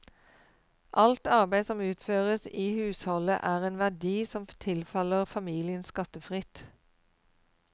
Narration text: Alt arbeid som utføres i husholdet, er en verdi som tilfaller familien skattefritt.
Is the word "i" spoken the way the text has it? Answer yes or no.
yes